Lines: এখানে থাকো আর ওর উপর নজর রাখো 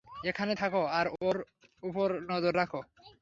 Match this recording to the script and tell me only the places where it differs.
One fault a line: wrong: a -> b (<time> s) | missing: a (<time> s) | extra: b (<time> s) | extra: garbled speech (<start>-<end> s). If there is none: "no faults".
no faults